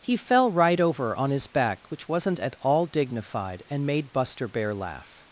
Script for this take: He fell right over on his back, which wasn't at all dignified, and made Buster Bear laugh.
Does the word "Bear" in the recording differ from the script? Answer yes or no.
no